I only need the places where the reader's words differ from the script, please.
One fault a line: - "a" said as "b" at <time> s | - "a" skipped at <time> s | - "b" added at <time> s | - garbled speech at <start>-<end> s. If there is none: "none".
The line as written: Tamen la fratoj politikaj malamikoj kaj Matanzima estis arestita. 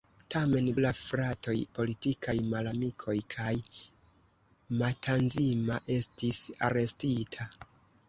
none